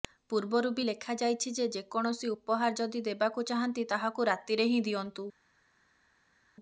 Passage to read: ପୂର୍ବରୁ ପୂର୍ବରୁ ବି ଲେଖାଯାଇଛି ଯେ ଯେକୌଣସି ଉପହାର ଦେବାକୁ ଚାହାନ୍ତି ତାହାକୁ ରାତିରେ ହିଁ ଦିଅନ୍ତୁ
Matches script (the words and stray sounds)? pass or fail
fail